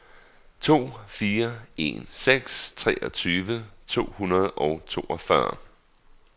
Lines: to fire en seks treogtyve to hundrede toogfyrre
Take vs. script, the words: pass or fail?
fail